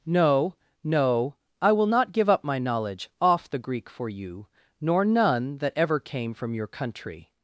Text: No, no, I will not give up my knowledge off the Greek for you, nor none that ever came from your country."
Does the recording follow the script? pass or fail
pass